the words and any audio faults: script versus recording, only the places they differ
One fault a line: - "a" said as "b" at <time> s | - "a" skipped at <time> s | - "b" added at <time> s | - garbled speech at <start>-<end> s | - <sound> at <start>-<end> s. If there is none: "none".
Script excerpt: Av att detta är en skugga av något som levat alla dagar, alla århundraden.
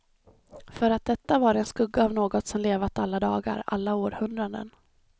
- "Av" said as "För" at 0.7 s
- "är" said as "var" at 1.4 s